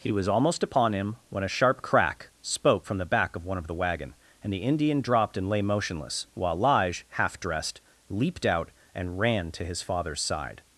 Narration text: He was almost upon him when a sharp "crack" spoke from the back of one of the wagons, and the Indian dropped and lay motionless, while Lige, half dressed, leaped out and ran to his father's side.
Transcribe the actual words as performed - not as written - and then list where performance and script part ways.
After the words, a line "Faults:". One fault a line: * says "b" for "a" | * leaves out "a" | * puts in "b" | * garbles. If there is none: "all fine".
He was almost upon him when a sharp "crack" spoke from the back of one of the wagon, and the Indian dropped and lay motionless, while Lige, half dressed, leaped out and ran to his father's side.
Faults:
* says "wagon" for "wagons"